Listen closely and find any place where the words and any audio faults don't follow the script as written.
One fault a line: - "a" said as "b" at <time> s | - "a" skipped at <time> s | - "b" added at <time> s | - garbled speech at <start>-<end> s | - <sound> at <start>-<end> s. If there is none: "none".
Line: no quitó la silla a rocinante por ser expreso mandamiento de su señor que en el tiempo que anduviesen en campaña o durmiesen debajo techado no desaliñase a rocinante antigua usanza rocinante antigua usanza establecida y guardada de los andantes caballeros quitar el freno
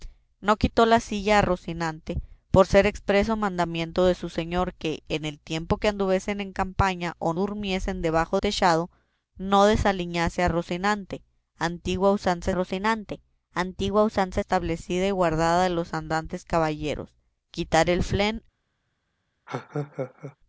- laugh at 19.5-20.4 s